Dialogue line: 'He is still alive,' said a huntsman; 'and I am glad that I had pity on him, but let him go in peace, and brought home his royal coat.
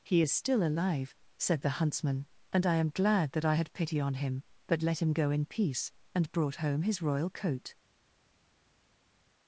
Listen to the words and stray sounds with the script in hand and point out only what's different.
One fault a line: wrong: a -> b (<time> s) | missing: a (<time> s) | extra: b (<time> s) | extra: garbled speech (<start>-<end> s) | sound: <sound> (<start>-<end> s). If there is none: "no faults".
wrong: a -> the (1.6 s)